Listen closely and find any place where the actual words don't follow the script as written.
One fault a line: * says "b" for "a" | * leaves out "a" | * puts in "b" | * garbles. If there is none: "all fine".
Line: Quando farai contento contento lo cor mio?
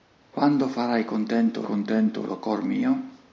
all fine